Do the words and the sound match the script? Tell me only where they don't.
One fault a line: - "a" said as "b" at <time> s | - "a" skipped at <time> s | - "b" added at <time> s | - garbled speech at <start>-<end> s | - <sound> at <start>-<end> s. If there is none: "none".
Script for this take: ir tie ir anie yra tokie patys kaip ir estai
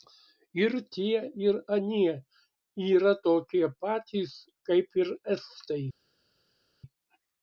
none